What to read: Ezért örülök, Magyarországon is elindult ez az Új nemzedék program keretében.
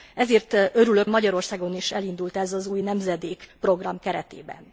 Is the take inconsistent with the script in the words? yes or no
no